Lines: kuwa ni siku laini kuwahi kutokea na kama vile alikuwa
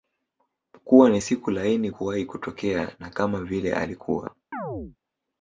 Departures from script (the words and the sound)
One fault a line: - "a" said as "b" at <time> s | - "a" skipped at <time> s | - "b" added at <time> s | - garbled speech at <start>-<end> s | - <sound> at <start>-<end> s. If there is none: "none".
- chirp at 4.5-5.0 s